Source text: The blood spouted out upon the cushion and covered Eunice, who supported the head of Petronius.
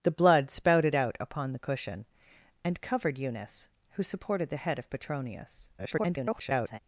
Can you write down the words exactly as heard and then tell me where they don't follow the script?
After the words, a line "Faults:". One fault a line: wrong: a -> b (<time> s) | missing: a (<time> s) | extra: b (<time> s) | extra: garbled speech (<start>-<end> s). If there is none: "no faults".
The blood spouted out upon the cushion and covered Eunice, who supported the head of Petronius. [garbled]
Faults:
extra: garbled speech (5.8-6.8 s)